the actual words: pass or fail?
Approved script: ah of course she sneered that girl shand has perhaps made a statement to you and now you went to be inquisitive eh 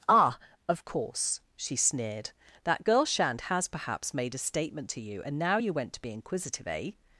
pass